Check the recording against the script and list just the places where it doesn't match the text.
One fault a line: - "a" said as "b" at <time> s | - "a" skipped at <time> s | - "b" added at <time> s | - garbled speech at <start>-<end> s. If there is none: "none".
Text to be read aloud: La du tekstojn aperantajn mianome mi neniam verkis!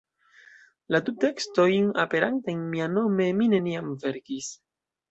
none